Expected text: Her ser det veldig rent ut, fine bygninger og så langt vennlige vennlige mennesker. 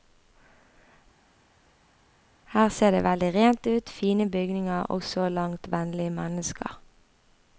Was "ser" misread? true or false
false